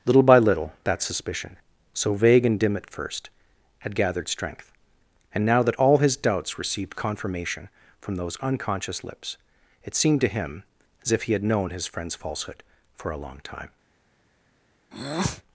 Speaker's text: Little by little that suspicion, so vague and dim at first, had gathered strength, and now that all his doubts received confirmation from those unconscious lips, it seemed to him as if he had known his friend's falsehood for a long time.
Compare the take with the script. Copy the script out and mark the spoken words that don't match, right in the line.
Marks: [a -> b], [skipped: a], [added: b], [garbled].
Little by little that suspicion, so vague and dim at first, had gathered strength, and now that all his doubts received confirmation from those unconscious lips, it seemed to him as if he had known his friend's falsehood for a long time.